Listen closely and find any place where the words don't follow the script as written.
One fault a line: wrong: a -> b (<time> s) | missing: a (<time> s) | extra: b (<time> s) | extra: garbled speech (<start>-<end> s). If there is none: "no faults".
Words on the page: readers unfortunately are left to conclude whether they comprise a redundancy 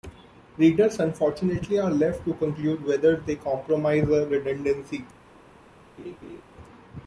no faults